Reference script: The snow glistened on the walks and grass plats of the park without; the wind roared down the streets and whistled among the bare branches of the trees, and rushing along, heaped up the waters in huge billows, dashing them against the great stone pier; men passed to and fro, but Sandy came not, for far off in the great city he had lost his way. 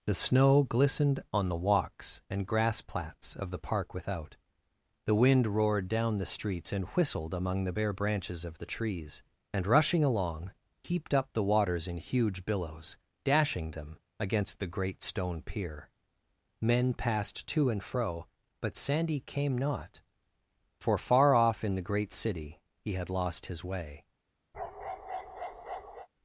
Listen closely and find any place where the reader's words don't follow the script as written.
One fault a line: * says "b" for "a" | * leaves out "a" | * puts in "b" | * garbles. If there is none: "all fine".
all fine